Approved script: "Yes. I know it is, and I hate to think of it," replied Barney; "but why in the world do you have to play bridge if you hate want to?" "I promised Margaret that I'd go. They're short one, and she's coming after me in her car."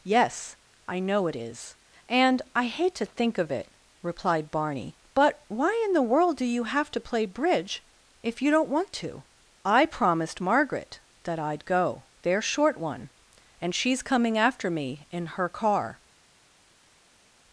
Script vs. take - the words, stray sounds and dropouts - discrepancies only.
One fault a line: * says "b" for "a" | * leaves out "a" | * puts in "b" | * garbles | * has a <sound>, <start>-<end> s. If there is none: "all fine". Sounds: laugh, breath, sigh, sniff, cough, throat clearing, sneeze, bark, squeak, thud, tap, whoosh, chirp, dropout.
* says "don't" for "hate"